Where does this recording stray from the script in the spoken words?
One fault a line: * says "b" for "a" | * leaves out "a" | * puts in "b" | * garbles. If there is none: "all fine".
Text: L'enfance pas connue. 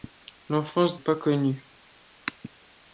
all fine